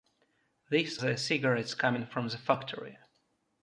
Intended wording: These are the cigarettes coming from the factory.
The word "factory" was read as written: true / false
true